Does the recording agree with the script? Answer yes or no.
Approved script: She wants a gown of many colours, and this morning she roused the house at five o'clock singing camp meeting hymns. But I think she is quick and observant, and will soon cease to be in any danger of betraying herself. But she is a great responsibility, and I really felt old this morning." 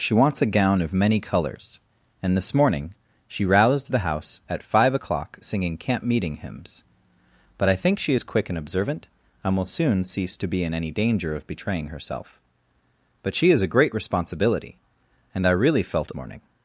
no